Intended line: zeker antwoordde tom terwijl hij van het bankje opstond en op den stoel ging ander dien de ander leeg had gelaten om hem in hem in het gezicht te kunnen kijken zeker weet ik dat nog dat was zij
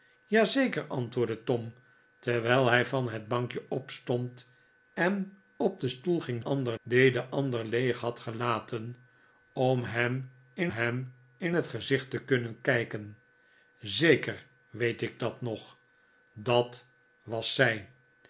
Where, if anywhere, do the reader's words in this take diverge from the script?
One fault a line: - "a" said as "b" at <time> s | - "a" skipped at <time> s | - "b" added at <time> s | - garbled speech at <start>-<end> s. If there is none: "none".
none